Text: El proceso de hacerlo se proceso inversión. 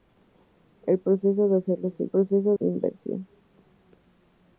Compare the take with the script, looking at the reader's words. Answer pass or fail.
pass